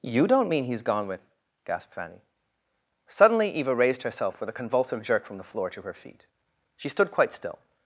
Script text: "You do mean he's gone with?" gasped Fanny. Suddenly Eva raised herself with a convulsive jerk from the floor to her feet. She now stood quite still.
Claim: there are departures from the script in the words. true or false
true